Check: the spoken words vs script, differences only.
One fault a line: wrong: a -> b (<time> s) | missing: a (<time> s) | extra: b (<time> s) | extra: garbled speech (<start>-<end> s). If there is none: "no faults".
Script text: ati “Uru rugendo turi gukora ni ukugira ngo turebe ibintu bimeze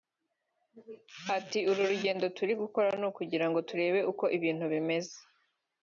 extra: uko (4.1 s)